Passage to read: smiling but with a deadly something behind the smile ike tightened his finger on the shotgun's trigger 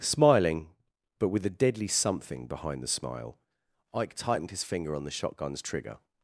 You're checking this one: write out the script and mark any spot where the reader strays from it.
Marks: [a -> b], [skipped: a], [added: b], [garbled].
smiling but with a deadly something behind the smile ike tightened his finger on the shotgun's trigger